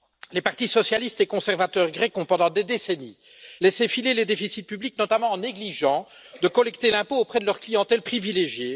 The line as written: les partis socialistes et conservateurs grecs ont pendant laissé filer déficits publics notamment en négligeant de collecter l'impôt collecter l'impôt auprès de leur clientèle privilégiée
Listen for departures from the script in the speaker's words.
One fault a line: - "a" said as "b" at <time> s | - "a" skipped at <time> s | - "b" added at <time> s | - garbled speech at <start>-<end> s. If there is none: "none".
- "des décennies" added at 2.5 s
- "les" added at 4.1 s
- "collecter l'impôt" skipped at 7.2 s